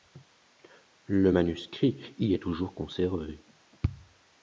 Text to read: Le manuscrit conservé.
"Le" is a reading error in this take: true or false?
false